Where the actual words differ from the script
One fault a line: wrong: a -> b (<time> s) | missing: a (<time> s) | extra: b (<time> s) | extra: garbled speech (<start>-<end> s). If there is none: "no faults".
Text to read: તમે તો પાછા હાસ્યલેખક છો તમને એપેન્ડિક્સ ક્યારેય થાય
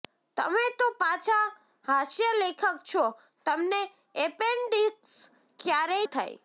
no faults